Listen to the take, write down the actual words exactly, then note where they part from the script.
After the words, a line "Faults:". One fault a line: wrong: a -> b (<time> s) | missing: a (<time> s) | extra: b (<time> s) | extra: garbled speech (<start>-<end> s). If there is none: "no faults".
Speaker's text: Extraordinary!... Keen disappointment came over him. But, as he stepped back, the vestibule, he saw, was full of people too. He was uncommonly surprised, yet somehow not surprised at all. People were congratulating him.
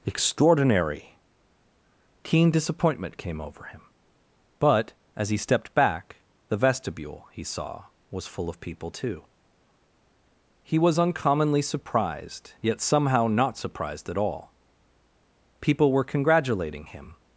Extraordinary!... Keen disappointment came over him. But, as he stepped back, the vestibule, he saw, was full of people too. He was uncommonly surprised, yet somehow not surprised at all. People were congratulating him.
Faults:
no faults